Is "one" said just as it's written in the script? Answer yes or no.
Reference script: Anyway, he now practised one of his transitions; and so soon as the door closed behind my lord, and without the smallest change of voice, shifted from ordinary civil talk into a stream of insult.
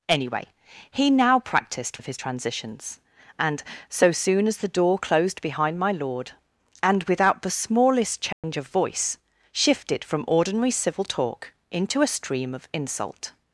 no